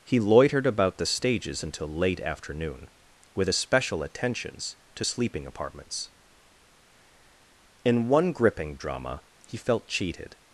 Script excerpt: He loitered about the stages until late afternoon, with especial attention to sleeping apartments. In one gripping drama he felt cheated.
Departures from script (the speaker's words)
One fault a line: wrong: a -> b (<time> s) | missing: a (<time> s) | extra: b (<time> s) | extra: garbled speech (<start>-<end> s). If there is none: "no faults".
wrong: attention -> attentions (4.0 s)